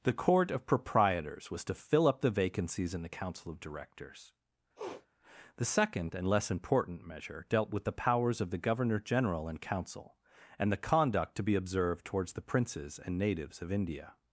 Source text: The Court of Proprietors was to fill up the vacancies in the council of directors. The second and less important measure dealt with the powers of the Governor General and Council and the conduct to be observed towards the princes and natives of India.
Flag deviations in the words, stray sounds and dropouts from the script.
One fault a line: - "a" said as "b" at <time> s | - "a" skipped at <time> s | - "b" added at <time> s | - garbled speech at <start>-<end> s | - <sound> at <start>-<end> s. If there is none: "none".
- sniff at 4.8-5.1 s